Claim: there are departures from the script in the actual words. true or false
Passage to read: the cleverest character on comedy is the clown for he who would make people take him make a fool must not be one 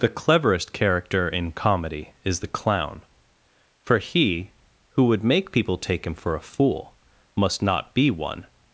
true